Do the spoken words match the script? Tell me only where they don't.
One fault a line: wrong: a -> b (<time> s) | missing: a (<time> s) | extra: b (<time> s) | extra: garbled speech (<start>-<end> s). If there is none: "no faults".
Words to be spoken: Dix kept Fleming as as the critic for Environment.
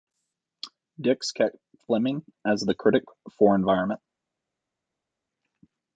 missing: as (2.6 s)